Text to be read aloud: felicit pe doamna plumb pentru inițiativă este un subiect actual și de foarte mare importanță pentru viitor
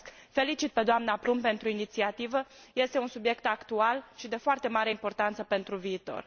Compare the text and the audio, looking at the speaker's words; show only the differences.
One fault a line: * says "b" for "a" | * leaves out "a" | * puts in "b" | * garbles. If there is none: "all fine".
all fine